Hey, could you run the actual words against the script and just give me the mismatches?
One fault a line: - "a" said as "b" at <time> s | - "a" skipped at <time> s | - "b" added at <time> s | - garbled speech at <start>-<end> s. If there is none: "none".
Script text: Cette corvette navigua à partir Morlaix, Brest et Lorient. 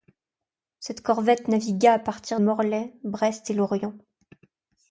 none